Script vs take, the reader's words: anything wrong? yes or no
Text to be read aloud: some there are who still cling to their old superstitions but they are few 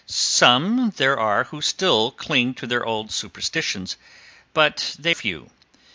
yes